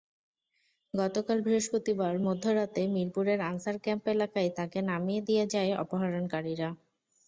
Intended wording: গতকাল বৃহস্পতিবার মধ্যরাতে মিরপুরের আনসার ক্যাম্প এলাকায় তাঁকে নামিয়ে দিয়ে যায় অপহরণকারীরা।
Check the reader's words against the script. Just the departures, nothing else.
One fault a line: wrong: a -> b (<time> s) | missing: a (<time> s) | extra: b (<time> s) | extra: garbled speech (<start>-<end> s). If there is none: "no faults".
no faults